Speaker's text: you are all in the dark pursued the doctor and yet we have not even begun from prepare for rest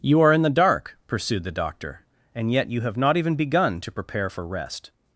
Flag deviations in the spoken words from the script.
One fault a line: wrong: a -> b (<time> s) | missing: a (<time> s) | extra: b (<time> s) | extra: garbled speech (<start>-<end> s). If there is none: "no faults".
missing: all (0.3 s)
wrong: we -> you (2.7 s)
wrong: from -> to (3.8 s)